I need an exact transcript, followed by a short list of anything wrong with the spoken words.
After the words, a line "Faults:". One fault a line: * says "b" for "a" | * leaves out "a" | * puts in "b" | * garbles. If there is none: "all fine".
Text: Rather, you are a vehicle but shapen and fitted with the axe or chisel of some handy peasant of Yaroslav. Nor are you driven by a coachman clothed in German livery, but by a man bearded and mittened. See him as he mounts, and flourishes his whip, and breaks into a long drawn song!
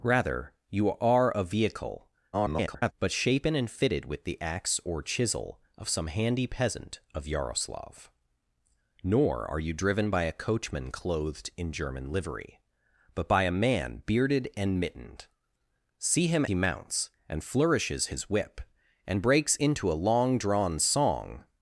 Rather, you are a vehicle [garbled] but shapen and fitted with the axe or chisel of some handy peasant of Yaroslav. Nor are you driven by a coachman clothed in German livery, but by a man bearded and mittened. See him he mounts, and flourishes his whip, and breaks into a long drawn song!
Faults:
* garbles
* leaves out "as"